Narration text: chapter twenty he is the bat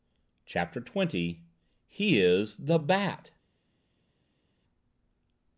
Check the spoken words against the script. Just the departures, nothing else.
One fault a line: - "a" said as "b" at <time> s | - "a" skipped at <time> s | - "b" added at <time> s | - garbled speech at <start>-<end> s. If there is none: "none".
none